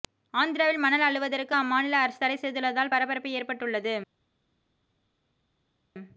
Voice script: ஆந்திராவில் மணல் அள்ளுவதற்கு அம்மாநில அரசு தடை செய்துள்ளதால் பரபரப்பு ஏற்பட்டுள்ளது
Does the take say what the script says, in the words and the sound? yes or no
yes